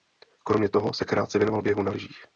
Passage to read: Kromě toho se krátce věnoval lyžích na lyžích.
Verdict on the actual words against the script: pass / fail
fail